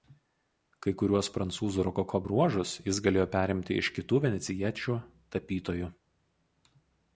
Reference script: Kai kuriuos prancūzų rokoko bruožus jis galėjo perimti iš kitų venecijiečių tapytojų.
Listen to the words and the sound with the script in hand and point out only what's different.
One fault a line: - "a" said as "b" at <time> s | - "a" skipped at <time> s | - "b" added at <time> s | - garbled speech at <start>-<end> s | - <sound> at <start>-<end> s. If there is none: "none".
none